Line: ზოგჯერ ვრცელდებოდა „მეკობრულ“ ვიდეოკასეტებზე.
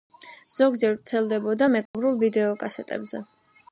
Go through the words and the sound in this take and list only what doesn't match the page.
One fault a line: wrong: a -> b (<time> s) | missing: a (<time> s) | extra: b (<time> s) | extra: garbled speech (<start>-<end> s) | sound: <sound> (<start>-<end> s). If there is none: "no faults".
sound: dropout (1.9-1.9 s)